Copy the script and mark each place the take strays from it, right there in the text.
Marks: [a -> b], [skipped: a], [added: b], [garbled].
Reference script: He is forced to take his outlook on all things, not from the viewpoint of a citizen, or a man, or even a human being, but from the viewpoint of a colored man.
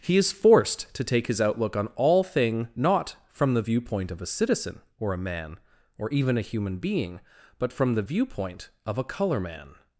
He is forced to take his outlook on all [things, -> thing] not from the viewpoint of a citizen, or a man, or even a human being, but from the viewpoint of a [colored -> color] man.